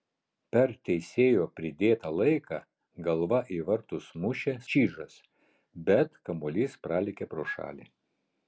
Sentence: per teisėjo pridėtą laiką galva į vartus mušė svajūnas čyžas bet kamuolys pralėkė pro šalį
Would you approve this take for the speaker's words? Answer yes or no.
no